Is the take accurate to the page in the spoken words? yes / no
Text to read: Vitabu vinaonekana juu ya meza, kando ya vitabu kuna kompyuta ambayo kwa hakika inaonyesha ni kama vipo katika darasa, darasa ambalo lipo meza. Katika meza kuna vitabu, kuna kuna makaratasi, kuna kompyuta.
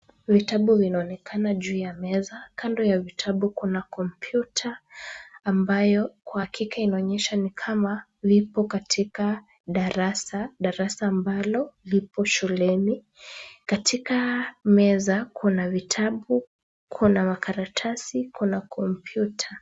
no